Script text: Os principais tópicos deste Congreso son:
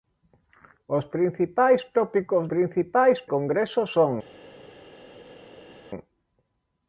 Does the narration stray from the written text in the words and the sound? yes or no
yes